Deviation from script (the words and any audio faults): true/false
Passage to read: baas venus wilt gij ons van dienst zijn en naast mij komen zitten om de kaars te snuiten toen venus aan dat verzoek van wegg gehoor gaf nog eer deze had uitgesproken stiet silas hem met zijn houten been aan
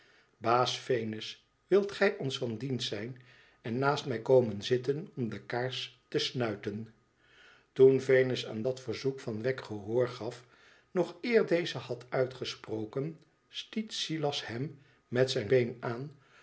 true